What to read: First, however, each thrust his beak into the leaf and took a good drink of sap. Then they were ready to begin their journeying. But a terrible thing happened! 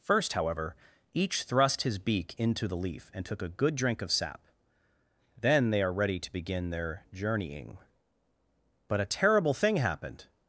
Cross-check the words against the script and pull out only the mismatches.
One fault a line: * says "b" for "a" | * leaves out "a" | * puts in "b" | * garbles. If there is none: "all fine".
* says "are" for "were"